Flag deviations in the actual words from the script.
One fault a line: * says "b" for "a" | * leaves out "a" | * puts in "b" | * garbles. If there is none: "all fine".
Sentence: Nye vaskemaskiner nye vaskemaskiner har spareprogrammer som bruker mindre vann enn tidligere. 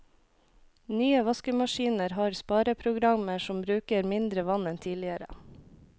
* leaves out "nye vaskemaskiner"